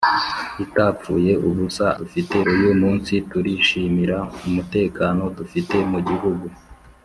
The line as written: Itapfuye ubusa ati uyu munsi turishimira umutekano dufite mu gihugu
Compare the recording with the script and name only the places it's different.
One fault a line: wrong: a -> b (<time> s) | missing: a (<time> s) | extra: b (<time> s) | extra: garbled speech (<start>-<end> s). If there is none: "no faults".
wrong: ati -> dufite (2.0 s)